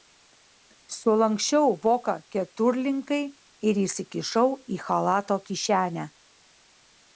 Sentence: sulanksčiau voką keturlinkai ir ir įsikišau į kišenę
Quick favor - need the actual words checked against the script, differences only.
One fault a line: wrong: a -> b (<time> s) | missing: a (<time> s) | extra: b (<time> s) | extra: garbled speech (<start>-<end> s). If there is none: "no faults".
missing: ir (3.8 s)
extra: chalato (4.9 s)